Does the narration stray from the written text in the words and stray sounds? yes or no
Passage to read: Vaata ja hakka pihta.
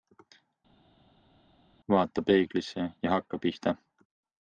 yes